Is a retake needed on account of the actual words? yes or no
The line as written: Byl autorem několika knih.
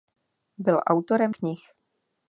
yes